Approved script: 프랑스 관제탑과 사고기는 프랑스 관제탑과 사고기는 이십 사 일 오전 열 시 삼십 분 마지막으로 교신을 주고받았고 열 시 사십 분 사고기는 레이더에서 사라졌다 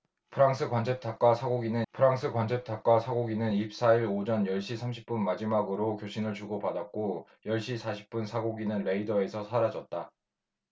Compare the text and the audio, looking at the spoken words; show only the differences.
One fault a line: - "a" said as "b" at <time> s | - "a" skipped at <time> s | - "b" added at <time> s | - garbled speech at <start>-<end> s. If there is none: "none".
none